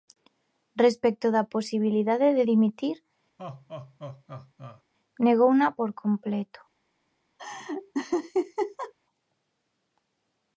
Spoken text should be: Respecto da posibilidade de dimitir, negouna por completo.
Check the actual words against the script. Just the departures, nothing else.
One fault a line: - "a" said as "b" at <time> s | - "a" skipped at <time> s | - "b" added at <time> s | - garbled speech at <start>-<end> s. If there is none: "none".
none